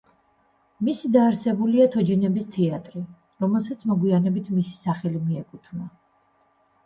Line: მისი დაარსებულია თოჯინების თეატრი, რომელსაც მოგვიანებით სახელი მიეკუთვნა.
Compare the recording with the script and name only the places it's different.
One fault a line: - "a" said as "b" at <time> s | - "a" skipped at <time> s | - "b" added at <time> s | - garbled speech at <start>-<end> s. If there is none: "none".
- "მისი" added at 4.6 s